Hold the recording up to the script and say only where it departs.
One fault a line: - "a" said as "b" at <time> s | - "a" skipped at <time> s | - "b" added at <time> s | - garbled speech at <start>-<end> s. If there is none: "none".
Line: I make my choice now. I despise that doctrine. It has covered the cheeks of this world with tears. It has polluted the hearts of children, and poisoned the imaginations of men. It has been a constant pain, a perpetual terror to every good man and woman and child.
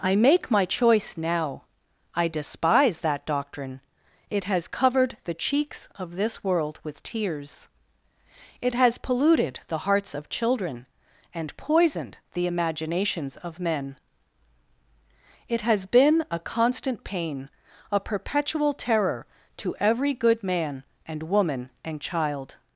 none